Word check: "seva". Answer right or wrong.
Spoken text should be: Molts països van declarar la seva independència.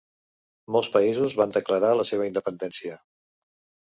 right